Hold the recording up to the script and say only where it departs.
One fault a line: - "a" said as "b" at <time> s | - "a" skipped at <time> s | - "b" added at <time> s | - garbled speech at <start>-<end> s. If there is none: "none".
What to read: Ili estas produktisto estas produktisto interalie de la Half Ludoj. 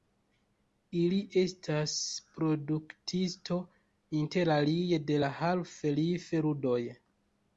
- "estas produktisto" skipped at 3.6 s
- "Life" added at 6.0 s